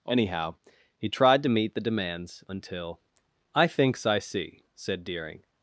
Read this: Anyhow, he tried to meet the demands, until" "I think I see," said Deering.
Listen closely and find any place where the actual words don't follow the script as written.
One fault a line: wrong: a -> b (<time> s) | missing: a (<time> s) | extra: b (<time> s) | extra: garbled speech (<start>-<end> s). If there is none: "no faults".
wrong: think -> thinks (3.7 s)